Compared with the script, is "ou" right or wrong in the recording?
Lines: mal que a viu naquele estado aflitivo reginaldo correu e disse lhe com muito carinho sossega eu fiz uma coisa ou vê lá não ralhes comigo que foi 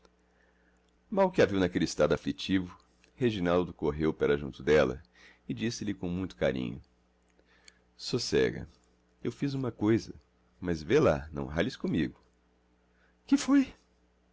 wrong